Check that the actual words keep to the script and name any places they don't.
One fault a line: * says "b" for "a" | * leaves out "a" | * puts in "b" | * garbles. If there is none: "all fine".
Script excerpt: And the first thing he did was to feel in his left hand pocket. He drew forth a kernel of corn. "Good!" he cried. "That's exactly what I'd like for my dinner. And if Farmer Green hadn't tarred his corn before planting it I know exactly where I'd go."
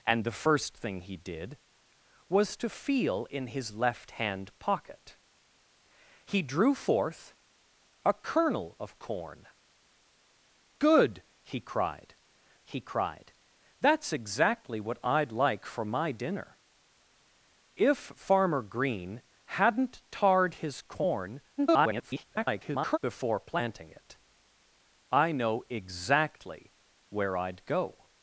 * puts in "he cried"
* leaves out "And"
* garbles